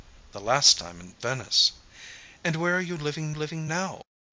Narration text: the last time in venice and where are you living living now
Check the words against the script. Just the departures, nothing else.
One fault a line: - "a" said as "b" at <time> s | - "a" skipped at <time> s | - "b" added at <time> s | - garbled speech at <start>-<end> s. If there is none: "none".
none